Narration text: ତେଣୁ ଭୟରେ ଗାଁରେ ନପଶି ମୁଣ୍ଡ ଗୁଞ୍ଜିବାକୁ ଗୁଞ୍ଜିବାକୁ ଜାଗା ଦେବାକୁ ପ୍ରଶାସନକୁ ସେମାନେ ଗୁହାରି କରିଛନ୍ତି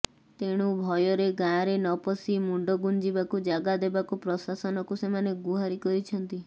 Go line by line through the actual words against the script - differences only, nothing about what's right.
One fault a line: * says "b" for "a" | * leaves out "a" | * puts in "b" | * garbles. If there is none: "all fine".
* leaves out "ଗୁଞ୍ଜିବାକୁ"